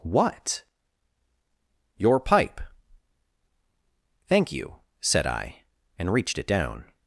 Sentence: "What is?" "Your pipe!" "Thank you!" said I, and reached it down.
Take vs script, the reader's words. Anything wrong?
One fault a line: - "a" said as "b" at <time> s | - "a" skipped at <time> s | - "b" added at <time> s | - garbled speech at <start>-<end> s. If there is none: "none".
- "is" skipped at 0.6 s